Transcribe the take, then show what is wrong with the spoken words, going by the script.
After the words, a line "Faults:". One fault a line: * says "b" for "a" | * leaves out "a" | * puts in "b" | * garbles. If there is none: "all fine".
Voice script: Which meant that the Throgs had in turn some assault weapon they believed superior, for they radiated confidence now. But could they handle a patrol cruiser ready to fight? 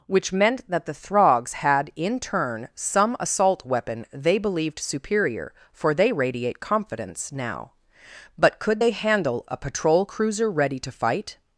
Which meant that the Throgs had in turn some assault weapon they believed superior, for they radiate confidence now. But could they handle a patrol cruiser ready to fight?
Faults:
* says "radiate" for "radiated"